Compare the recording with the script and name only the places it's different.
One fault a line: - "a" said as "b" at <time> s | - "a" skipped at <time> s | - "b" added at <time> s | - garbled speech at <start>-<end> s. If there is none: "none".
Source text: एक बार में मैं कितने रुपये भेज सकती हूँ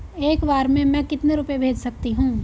none